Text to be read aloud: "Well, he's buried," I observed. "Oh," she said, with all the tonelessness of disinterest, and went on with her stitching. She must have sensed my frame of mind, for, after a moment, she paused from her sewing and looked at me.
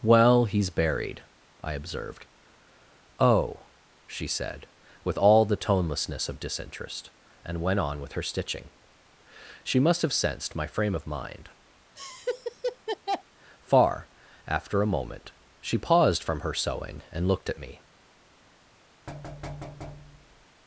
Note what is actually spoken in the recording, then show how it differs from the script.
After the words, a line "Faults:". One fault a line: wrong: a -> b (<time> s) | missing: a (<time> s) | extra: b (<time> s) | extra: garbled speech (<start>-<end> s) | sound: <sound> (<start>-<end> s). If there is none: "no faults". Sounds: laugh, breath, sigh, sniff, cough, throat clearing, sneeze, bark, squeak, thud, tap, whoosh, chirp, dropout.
"Well, he's buried," I observed. "Oh," she said, with all the tonelessness of disinterest, and went on with her stitching. She must have sensed my frame of mind, far, after a moment, she paused from her sewing and looked at me.
Faults:
sound: laugh (12.0-13.2 s)
wrong: for -> far (13.6 s)
sound: thud (19.1-20.5 s)